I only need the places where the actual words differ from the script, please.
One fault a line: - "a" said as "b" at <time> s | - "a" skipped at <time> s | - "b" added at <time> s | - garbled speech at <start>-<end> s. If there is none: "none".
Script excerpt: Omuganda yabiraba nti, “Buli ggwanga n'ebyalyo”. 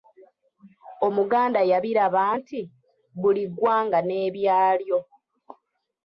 none